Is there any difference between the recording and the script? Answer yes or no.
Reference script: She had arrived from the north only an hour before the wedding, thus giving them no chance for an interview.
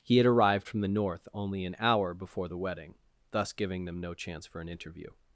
yes